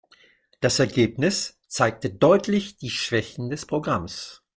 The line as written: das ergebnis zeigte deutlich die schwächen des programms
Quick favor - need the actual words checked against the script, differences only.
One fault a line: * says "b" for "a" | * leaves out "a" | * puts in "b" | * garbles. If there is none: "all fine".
all fine